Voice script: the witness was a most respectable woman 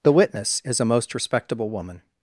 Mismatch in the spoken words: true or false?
true